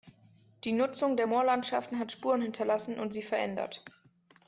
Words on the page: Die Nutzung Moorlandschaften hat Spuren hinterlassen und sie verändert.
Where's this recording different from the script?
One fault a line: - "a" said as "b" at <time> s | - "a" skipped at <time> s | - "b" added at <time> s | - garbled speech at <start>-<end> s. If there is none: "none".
- "der" added at 1.1 s